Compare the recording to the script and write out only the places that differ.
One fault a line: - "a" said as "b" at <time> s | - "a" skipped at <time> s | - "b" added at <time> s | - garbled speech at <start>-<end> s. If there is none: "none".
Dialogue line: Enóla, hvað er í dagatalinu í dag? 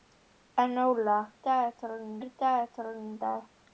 - "hvað" said as "dagatalinu" at 1.5 s